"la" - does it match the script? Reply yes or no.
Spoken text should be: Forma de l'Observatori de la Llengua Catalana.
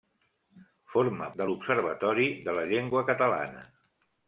yes